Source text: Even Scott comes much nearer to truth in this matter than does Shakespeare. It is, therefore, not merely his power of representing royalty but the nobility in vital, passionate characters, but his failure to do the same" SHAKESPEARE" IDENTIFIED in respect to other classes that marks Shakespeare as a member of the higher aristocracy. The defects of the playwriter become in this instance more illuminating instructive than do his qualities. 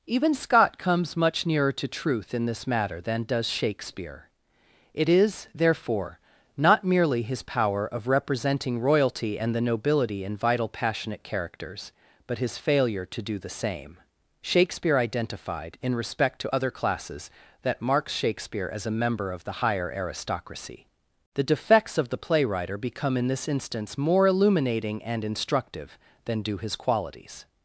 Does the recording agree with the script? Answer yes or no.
no